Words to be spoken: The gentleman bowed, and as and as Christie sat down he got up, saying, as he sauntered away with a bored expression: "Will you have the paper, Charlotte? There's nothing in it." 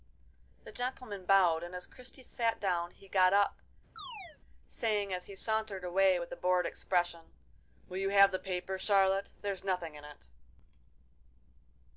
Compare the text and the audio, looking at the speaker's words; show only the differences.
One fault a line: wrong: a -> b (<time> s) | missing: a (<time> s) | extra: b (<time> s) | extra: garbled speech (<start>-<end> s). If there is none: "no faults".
missing: and as (1.9 s)